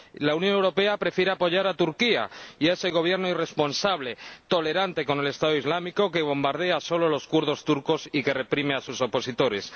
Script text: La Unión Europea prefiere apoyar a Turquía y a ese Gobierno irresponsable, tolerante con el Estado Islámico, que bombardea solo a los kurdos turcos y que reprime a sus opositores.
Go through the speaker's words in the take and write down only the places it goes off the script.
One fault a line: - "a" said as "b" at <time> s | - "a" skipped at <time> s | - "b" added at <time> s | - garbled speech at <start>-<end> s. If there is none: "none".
none